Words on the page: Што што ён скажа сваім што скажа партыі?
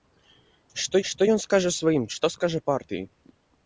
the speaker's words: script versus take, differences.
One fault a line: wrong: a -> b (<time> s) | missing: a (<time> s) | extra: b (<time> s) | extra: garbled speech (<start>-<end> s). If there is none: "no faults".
no faults